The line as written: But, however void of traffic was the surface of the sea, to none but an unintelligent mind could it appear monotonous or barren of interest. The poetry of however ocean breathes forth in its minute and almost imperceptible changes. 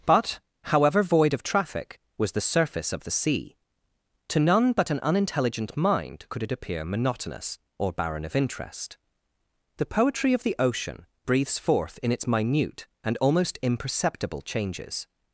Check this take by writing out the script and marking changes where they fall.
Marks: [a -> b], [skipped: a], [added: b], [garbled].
But, however void of traffic was the surface of the sea, to none but an unintelligent mind could it appear monotonous or barren of interest. The poetry of [however -> the] ocean breathes forth in its minute and almost imperceptible changes.